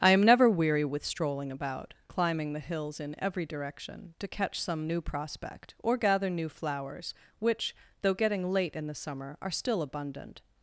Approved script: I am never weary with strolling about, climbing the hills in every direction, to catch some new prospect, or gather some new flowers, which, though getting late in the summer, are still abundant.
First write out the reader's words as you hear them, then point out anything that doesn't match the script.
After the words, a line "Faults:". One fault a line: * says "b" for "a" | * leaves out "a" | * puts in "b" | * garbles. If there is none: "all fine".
I am never weary with strolling about, climbing the hills in every direction, to catch some new prospect, or gather new flowers, which, though getting late in the summer, are still abundant.
Faults:
* leaves out "some"